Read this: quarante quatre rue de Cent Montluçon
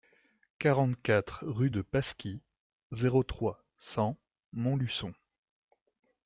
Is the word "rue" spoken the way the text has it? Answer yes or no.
yes